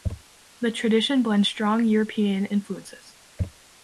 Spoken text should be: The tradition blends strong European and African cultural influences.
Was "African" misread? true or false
true